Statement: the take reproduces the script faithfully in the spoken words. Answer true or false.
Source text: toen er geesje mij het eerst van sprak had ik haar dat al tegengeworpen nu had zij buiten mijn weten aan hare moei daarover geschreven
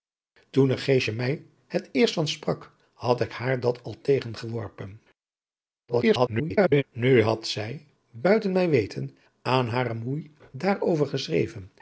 false